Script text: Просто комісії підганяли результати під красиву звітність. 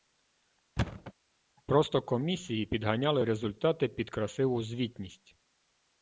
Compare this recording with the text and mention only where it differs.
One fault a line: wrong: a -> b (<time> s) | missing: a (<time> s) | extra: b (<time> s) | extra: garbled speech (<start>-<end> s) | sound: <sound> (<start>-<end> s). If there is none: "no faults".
sound: thud (0.8-1.1 s)